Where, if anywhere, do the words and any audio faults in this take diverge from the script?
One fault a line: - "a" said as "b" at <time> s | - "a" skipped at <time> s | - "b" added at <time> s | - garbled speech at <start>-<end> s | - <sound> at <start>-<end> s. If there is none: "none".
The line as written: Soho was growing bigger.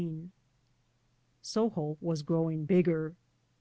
none